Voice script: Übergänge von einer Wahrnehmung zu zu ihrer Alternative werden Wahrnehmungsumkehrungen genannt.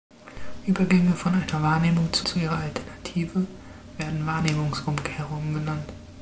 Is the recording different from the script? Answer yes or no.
no